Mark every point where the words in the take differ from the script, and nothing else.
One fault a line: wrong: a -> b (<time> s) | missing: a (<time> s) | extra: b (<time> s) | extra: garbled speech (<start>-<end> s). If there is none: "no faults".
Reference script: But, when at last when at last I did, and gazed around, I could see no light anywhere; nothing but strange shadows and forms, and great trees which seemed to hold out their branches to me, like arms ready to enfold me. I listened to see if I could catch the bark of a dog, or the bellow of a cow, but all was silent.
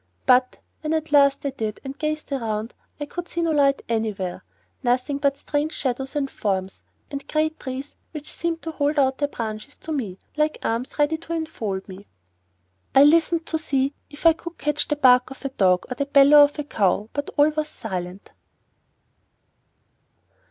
missing: when at last (1.4 s)